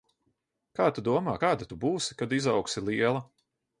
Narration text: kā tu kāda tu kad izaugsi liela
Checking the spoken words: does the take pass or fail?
fail